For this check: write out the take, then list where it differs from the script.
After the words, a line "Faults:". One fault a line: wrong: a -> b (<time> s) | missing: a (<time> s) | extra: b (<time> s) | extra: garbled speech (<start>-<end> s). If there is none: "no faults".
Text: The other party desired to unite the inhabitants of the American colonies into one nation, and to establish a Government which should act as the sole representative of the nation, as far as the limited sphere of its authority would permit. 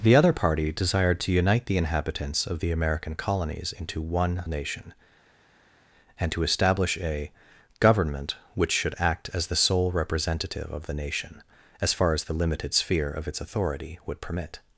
The other party desired to unite the inhabitants of the American colonies into one nation, and to establish a Government which should act as the sole representative of the nation, as far as the limited sphere of its authority would permit.
Faults:
no faults